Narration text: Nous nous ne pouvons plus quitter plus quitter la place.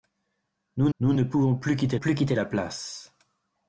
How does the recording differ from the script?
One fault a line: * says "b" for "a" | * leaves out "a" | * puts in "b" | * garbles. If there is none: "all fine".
all fine